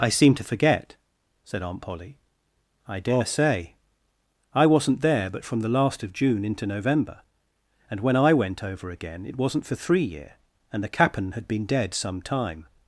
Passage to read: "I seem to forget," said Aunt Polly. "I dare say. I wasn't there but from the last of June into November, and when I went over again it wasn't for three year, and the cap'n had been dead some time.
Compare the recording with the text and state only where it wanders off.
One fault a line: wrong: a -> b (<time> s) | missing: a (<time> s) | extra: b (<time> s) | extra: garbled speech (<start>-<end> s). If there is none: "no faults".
no faults